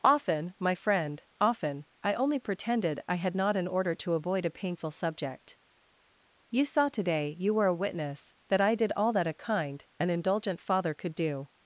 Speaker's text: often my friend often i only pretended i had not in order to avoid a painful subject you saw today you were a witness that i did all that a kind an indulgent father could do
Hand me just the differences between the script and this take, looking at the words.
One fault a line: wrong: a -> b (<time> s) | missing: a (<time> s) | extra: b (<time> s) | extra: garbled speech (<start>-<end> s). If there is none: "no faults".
no faults